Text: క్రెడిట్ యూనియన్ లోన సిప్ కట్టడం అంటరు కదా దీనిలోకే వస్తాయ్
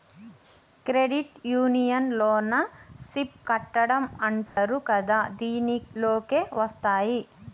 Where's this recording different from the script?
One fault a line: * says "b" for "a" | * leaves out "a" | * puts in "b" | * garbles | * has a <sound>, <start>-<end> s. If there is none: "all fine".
* has a dropout, 4.5-4.6 s